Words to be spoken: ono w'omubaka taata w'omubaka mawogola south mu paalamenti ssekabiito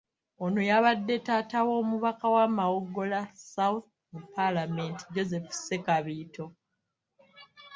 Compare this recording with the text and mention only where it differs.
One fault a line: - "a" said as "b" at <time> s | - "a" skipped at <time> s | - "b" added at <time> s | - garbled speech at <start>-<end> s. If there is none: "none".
- "w'omubaka" said as "yabadde" at 0.7 s
- "wa" added at 2.4 s
- "joseph" added at 5.1 s